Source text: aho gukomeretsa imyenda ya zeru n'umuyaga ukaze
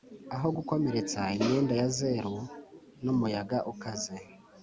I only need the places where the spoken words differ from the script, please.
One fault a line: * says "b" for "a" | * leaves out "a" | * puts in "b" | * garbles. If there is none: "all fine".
all fine